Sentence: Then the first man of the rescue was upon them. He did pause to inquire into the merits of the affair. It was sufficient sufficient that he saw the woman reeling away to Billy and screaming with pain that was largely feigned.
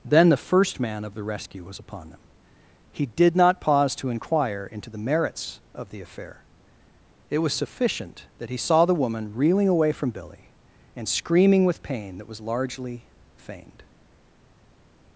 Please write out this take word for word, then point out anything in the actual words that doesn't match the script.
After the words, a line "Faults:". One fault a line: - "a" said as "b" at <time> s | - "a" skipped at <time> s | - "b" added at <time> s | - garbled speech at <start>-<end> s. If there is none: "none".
Then the first man of the rescue was upon them. He did not pause to inquire into the merits of the affair. It was sufficient that he saw the woman reeling away from Billy and screaming with pain that was largely feigned.
Faults:
- "not" added at 3.4 s
- "sufficient" skipped at 8.3 s
- "to" said as "from" at 9.9 s